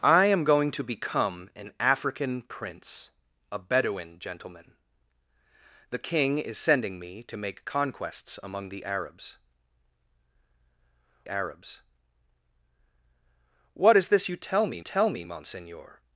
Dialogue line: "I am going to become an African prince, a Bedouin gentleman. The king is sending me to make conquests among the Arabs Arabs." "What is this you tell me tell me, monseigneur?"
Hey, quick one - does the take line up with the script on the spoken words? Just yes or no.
yes